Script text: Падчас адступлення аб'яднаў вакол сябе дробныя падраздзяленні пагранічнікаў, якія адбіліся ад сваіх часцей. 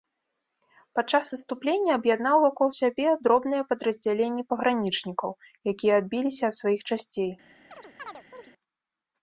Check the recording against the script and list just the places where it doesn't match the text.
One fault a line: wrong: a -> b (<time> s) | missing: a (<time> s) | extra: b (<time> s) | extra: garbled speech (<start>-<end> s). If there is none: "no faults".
no faults